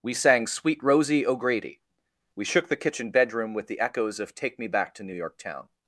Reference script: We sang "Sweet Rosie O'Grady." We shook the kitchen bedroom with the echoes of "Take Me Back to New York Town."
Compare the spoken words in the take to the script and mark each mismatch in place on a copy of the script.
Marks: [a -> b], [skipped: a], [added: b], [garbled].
We sang "Sweet Rosie O'Grady." We shook the kitchen bedroom with the echoes of "Take Me Back to New York Town."